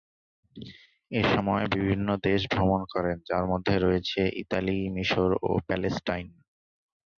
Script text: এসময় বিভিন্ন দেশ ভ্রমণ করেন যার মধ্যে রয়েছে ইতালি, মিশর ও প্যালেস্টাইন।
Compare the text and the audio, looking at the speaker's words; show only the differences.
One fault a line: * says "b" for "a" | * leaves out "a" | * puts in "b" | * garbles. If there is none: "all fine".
all fine